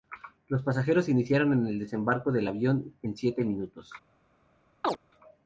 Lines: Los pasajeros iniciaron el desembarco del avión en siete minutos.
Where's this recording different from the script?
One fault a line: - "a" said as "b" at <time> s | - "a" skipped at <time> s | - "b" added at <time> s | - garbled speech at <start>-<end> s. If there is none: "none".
none